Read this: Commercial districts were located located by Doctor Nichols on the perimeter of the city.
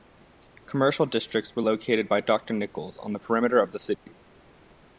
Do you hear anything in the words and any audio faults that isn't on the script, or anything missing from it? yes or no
yes